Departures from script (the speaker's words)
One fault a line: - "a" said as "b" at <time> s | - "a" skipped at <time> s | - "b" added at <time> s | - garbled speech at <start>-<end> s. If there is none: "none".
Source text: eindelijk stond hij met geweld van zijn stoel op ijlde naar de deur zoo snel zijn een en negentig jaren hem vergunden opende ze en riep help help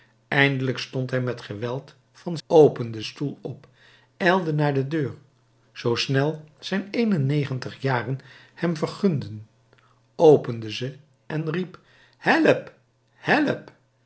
- "zijn" said as "opende" at 2.5 s